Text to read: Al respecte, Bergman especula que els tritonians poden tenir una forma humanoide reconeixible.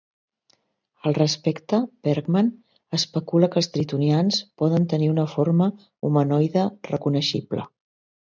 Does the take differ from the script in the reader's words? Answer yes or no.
no